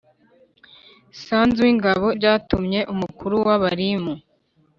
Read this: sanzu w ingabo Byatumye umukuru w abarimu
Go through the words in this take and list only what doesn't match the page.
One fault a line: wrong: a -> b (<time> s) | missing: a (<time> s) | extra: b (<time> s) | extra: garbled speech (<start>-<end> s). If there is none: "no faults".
no faults